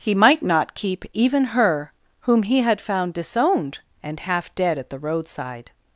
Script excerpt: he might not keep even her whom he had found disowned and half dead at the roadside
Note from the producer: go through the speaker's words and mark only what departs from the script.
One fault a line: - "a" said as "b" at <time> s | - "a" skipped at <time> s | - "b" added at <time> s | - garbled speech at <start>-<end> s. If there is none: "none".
none